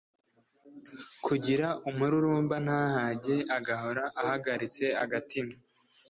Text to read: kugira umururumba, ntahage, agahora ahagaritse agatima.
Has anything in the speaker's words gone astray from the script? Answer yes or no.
no